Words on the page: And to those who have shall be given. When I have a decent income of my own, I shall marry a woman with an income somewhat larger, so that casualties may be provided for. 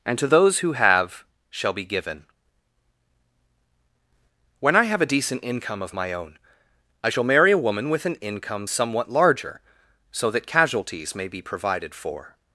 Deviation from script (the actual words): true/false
false